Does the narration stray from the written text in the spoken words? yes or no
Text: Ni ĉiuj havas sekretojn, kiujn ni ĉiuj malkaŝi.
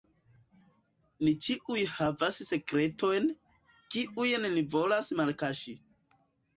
yes